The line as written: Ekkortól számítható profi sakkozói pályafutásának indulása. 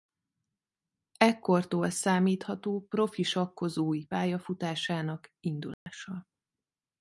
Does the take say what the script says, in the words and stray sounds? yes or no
no